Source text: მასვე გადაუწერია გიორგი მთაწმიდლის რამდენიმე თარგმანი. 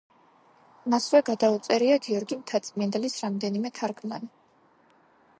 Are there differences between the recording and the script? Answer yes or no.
no